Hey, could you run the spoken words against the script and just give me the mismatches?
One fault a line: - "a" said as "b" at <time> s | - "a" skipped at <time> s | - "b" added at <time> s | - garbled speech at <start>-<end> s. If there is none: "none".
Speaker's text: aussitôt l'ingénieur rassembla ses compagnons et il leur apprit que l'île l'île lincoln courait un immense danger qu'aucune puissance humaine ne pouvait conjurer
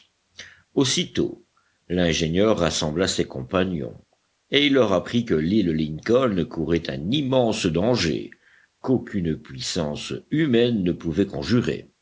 - "l'île" skipped at 5.7 s